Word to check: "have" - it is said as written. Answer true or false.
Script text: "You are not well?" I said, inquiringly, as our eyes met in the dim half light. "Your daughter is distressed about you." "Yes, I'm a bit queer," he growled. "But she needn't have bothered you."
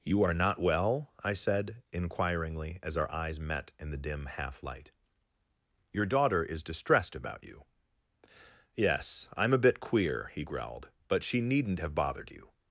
true